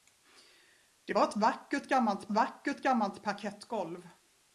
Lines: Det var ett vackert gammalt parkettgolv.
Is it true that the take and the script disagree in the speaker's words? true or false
true